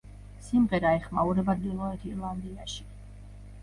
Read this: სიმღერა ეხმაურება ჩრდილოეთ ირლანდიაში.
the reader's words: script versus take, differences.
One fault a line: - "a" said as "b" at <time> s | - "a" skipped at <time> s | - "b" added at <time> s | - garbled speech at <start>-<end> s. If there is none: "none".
none